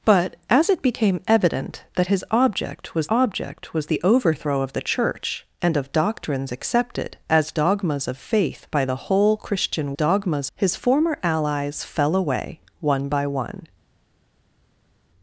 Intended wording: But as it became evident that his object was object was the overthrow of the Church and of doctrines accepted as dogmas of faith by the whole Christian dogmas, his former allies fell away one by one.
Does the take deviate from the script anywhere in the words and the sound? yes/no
no